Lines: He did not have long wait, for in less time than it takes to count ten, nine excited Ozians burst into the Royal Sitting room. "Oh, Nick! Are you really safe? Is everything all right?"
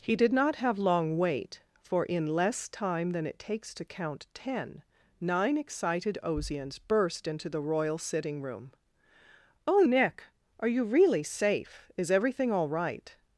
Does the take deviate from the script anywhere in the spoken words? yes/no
no